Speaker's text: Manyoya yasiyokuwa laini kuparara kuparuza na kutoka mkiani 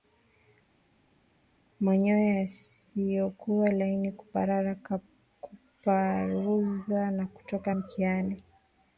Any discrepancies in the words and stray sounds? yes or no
no